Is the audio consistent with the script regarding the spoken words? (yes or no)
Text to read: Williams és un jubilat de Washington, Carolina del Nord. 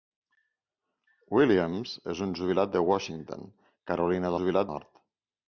no